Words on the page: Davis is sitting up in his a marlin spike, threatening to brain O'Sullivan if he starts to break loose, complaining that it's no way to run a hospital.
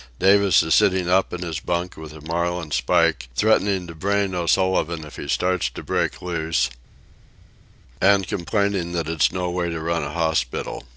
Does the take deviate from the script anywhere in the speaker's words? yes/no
yes